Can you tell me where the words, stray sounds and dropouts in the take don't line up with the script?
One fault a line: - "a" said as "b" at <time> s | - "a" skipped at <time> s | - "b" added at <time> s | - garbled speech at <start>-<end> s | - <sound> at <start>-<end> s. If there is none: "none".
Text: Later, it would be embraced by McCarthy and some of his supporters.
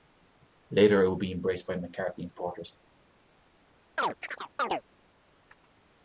- "some of his" skipped at 2.3 s
- chirp at 4.0-4.8 s